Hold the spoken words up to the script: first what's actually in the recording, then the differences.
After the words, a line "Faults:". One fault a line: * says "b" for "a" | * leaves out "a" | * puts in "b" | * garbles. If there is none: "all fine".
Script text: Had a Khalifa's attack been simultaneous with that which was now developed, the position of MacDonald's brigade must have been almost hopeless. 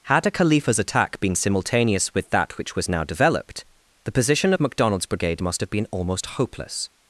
Had a Khalifa's attack been simultaneous with that which was now developed, the position of MacDonald's brigade must have been almost hopeless.
Faults:
all fine